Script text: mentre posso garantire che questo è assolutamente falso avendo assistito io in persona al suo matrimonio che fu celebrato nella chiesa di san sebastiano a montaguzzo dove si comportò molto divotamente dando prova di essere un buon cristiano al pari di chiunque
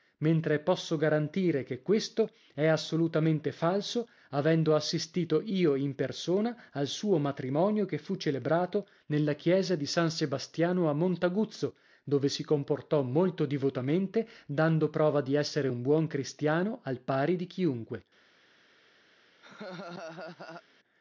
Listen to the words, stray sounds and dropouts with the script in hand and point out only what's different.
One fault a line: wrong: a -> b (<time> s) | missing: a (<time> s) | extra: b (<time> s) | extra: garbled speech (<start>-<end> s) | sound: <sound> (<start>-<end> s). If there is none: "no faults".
sound: laugh (19.4-20.6 s)